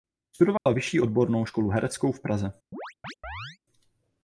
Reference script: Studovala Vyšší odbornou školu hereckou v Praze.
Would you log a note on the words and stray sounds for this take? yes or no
yes